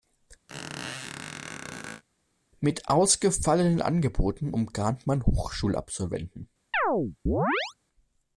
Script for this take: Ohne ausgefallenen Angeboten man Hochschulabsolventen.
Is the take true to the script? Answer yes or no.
no